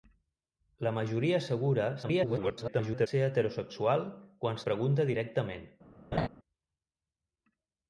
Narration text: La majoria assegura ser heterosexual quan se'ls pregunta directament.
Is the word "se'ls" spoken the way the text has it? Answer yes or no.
no